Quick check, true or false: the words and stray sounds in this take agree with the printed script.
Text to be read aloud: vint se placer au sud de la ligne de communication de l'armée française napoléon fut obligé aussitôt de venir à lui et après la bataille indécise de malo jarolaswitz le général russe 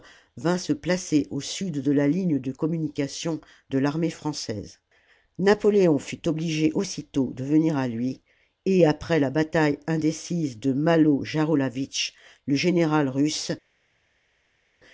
true